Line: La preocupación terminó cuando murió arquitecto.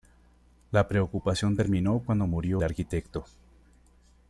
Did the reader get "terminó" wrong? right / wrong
right